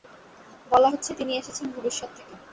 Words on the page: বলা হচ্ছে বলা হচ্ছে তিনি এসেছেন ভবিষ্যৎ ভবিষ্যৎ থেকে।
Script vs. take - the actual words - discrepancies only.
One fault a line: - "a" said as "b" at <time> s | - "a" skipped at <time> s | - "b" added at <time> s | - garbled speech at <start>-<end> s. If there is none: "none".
- "বলা হচ্ছে" skipped at 1.1 s
- "ভবিষ্যৎ" skipped at 2.1 s